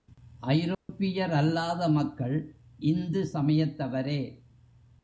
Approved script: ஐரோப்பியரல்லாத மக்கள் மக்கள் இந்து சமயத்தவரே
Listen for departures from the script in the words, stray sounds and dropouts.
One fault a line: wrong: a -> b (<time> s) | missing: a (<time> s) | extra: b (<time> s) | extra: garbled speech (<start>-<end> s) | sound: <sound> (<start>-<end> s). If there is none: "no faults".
sound: dropout (0.7-0.9 s)
missing: மக்கள் (2.4 s)